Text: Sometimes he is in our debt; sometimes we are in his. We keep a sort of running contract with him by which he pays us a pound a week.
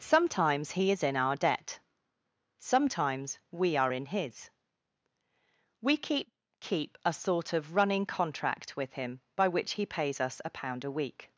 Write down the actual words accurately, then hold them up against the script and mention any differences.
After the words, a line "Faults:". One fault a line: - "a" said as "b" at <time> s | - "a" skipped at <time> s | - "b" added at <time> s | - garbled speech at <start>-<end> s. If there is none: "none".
Sometimes he is in our debt; sometimes we are in his. We keep keep a sort of running contract with him by which he pays us a pound a week.
Faults:
- "keep" added at 6.6 s